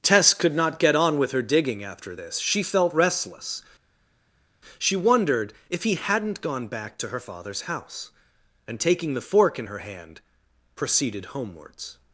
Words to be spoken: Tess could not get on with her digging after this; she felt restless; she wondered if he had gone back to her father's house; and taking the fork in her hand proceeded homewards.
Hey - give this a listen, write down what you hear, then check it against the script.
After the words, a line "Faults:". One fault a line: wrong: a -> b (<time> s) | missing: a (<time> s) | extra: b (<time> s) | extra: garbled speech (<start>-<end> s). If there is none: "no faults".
Tess could not get on with her digging after this; she felt restless; she wondered if he hadn't gone back to her father's house; and taking the fork in her hand proceeded homewards.
Faults:
wrong: had -> hadn't (6.0 s)